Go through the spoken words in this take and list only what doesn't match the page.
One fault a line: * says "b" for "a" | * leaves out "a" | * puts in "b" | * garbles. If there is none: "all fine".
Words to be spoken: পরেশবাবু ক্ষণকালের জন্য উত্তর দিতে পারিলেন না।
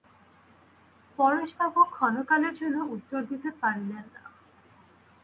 all fine